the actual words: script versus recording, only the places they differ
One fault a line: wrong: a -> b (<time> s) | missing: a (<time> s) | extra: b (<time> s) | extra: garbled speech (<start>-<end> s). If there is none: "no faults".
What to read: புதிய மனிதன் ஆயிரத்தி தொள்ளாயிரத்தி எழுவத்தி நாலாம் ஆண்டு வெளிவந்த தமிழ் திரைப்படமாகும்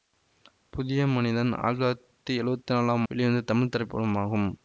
missing: ஆண்டு (3.0 s)